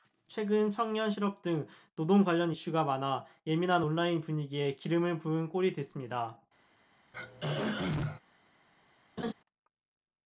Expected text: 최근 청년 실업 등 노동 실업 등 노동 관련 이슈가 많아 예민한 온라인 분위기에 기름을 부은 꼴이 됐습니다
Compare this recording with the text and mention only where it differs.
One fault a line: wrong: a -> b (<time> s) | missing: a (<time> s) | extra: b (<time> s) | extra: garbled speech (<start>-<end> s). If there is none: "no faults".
missing: 실업 등 노동 (2.2 s)